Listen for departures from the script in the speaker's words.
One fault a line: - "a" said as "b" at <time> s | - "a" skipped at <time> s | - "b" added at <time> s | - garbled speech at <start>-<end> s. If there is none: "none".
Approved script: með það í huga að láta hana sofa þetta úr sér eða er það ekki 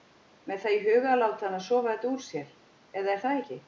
none